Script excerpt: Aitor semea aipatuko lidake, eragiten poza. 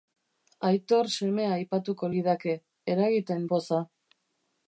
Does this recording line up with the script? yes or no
yes